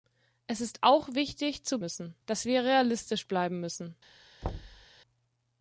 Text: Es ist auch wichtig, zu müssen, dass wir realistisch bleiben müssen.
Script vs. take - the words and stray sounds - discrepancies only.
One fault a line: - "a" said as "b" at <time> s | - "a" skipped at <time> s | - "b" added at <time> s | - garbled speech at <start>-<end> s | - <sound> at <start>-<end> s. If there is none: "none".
- thud at 4.4-4.9 s